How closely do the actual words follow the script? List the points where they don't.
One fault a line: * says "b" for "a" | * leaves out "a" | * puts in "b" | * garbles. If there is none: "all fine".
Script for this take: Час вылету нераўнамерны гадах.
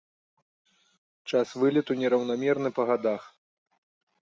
* puts in "па"